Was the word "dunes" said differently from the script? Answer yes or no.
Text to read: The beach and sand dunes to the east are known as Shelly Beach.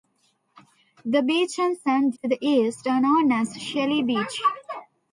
yes